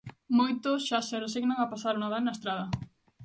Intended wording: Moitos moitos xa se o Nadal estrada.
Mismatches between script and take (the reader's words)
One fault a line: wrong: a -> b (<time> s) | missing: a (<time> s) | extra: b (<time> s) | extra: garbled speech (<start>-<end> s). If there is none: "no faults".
missing: moitos (0.8 s)
extra: resignan a pasar (1.2 s)
extra: na (2.2 s)